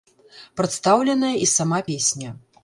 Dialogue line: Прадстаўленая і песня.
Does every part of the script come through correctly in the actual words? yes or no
no